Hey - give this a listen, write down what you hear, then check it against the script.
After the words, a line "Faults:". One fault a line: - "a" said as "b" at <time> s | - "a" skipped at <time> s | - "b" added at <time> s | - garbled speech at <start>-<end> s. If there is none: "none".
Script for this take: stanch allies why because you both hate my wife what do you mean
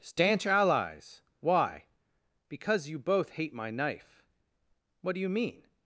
stanch allies why because you both hate my knife what do you mean
Faults:
- "wife" said as "knife" at 3.7 s